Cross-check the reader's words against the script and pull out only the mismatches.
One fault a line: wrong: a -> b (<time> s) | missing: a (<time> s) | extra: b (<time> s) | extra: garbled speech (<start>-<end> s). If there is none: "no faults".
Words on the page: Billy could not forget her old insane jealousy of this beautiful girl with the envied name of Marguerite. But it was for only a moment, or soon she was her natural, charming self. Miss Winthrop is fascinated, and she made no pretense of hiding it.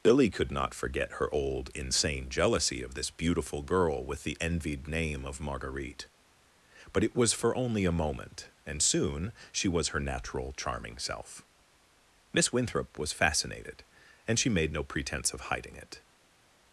wrong: or -> and (8.6 s)
wrong: is -> was (13.0 s)